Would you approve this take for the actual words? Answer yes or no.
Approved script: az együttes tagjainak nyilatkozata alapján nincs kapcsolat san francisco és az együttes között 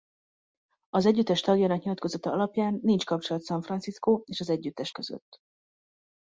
yes